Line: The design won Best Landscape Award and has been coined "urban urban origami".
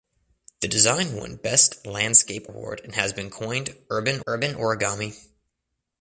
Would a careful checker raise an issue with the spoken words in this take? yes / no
no